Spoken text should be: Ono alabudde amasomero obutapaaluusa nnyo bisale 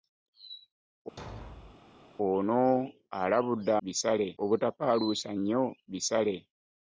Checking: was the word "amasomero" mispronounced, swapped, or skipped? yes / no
yes